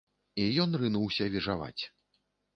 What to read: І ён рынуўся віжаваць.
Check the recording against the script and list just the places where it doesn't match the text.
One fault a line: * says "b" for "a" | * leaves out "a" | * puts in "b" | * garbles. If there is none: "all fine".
all fine